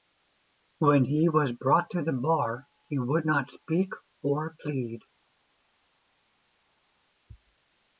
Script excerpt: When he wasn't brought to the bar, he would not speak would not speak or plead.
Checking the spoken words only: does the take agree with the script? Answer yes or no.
no